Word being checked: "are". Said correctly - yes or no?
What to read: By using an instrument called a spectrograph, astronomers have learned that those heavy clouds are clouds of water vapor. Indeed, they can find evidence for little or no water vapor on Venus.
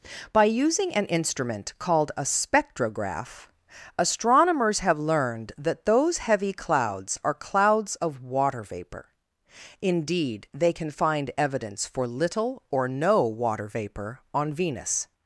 yes